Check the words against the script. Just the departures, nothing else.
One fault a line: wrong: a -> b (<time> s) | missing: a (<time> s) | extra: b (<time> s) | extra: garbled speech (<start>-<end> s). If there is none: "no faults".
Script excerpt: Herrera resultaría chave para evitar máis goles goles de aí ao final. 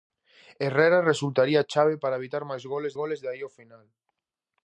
no faults